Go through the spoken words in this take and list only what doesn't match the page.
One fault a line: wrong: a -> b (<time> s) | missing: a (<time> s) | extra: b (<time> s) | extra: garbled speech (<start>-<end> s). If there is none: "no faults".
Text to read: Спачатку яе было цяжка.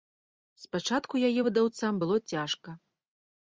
extra: выдаўцам (1.5 s)